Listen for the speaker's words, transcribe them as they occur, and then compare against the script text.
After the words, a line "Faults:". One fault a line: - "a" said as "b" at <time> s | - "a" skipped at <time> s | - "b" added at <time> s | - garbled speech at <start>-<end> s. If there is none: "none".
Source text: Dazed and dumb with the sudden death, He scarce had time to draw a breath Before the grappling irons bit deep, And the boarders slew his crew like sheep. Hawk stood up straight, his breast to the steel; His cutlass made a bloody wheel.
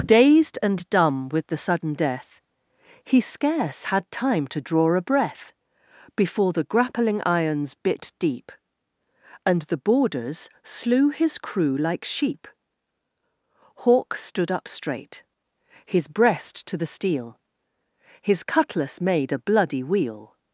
Dazed and dumb with the sudden death, He scarce had time to draw a breath Before the grappling irons bit deep, And the boarders slew his crew like sheep. Hawk stood up straight, his breast to the steel; His cutlass made a bloody wheel.
Faults:
none